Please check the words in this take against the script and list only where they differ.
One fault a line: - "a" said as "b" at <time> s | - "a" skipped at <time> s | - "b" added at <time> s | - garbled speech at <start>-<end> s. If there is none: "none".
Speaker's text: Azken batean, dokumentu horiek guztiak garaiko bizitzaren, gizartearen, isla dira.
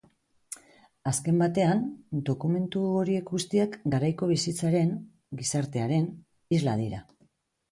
none